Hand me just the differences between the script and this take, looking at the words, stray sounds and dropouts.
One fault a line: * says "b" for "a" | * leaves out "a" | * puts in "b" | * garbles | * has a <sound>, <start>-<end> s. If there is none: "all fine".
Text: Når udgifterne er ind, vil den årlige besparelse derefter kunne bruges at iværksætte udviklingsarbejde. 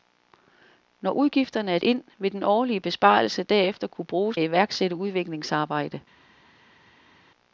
all fine